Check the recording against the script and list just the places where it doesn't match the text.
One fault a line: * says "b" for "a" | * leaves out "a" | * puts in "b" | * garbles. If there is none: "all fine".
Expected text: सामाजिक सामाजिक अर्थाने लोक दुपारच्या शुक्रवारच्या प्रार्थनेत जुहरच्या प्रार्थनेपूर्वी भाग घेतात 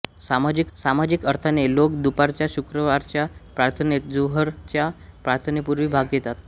all fine